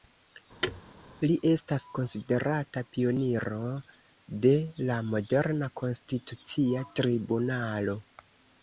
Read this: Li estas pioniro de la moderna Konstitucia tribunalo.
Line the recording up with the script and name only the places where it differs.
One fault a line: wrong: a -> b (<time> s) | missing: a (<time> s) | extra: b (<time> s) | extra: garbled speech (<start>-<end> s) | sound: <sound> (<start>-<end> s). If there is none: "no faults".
sound: thud (0.6-0.8 s)
extra: konsiderata (2.0 s)